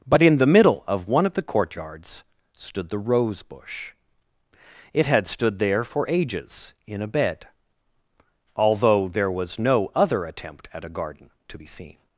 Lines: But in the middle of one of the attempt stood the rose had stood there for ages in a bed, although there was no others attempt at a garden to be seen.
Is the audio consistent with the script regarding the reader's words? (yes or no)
no